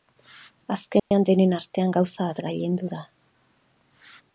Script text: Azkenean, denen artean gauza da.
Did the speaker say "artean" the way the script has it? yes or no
yes